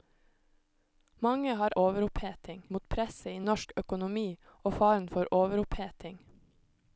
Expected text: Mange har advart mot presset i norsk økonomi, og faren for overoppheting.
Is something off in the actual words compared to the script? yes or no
yes